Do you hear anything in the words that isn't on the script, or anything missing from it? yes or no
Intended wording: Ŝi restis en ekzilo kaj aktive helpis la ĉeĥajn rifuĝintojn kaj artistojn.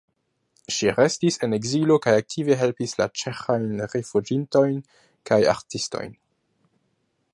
no